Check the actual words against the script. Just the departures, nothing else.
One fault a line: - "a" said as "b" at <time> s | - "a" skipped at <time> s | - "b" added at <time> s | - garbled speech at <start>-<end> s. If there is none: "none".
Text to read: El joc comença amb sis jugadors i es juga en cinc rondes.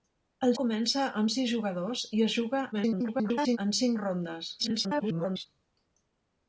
- "joc" skipped at 0.5 s
- garbled speech at 2.7-3.6 s
- garbled speech at 4.6-5.5 s